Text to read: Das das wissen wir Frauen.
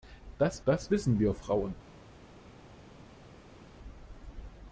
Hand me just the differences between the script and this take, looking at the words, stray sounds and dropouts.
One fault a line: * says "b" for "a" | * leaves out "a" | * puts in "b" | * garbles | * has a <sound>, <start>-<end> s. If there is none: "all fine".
all fine